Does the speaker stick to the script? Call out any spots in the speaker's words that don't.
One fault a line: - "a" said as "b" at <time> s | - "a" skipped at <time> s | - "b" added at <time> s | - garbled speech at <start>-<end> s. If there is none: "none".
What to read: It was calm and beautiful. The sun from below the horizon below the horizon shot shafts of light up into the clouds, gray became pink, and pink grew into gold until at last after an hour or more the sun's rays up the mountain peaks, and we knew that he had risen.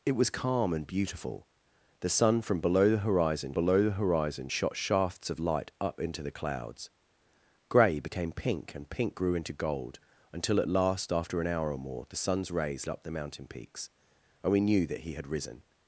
none